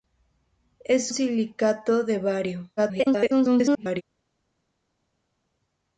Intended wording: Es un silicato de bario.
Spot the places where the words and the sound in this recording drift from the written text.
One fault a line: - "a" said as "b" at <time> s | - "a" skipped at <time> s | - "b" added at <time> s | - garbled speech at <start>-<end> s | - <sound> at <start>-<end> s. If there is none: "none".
- "un" skipped at 1.1 s
- garbled speech at 2.8-4.0 s